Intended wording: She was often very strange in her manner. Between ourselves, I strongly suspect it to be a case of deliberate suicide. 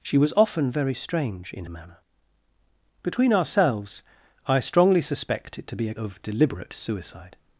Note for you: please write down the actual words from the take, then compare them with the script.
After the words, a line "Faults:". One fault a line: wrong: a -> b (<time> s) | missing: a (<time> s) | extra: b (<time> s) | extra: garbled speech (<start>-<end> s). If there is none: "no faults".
She was often very strange in manner. Between ourselves, I strongly suspect it to be a of deliberate suicide.
Faults:
missing: her (1.6 s)
missing: case (5.9 s)